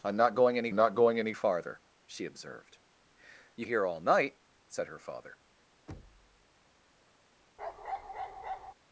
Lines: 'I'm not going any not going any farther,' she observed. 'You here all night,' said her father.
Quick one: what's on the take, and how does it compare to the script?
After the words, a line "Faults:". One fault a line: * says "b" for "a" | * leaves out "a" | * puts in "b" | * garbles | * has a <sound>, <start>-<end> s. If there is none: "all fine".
'I'm not going any not going any farther,' she observed. 'You here all night,' said her father.
Faults:
* has a thud, 5.9-6.4 s
* has a bark, 7.6-8.7 s